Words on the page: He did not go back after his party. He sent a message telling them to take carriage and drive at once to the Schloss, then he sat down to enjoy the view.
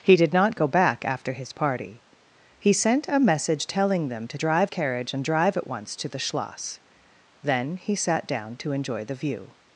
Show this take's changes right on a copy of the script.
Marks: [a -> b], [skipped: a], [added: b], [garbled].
He did not go back after his party. He sent a message telling them to [take -> drive] carriage and drive at once to the Schloss, then he sat down to enjoy the view.